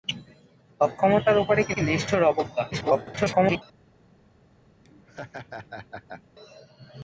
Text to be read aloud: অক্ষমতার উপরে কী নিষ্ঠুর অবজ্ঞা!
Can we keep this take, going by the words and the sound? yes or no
no